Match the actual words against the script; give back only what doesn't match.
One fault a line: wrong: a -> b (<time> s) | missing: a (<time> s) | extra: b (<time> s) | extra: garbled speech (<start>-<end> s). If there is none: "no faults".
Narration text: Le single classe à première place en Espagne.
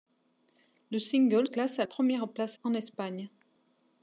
no faults